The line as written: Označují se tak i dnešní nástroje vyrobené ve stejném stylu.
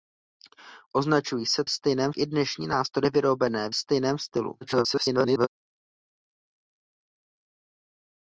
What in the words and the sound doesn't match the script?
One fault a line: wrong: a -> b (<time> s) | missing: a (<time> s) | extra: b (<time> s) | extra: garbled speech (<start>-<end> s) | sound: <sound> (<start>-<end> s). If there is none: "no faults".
wrong: tak -> stejném (1.7 s)
missing: ve (3.7 s)
extra: garbled speech (4.6-5.5 s)